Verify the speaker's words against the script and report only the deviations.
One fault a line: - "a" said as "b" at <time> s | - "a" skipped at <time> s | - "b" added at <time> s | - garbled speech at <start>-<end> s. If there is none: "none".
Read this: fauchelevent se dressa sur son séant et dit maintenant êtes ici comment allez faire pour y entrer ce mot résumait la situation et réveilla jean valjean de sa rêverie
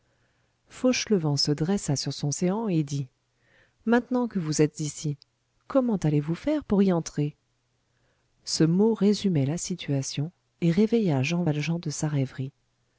- "que vous" added at 4.3 s
- "vous" added at 6.2 s